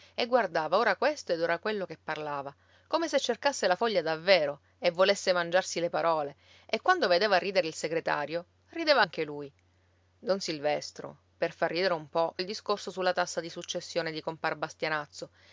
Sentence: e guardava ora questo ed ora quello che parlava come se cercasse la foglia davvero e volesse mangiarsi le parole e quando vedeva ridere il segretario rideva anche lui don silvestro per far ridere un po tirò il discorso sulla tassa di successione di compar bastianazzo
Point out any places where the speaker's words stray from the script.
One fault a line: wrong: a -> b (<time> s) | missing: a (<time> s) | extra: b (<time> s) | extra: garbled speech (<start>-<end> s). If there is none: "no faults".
missing: tirò (12.4 s)